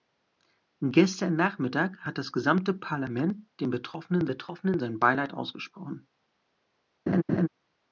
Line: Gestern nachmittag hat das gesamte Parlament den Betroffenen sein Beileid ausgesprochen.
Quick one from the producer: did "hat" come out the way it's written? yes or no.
yes